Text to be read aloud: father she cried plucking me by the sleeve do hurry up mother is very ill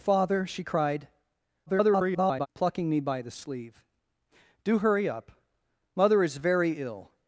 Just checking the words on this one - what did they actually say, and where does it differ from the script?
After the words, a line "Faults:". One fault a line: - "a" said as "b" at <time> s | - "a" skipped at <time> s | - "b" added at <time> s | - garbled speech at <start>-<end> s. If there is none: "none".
father she cried [garbled] plucking me by the sleeve do hurry up mother is very ill
Faults:
- garbled speech at 1.7-2.5 s